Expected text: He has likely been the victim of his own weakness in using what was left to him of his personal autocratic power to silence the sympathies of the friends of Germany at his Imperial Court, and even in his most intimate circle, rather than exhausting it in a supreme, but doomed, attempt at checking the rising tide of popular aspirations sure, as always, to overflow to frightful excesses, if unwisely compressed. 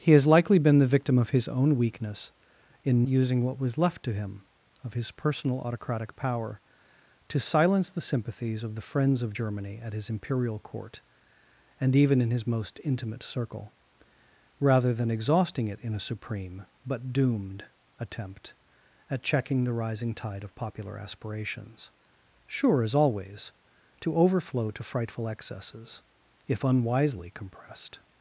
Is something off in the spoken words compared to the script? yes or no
no